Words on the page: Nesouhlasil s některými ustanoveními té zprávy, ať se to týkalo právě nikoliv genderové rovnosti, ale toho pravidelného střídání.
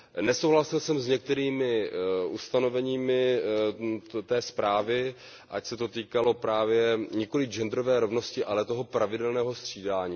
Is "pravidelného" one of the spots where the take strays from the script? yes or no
no